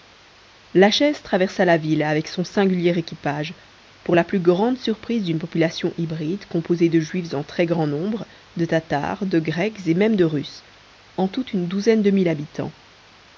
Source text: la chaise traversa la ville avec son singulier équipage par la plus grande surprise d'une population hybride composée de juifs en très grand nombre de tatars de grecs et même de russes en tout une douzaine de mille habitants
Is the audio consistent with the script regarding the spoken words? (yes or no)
no